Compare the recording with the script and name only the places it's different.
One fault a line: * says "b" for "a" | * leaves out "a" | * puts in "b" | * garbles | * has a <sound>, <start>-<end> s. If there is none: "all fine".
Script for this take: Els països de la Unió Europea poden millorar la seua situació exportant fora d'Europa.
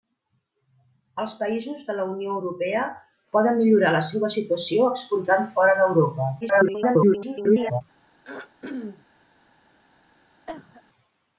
* garbles
* has a throat clearing, 8.2-9.1 s
* has a cough, 10.5-10.8 s